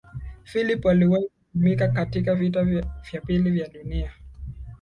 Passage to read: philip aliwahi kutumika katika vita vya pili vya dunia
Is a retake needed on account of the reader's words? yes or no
no